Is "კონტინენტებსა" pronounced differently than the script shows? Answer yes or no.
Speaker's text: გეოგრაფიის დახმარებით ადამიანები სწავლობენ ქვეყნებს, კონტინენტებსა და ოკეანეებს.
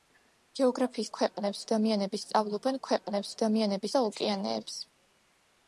yes